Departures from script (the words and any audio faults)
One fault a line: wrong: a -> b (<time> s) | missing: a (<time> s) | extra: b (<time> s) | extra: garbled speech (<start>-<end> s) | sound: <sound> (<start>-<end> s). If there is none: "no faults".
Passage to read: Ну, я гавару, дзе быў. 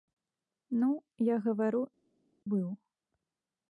missing: дзе (1.8 s)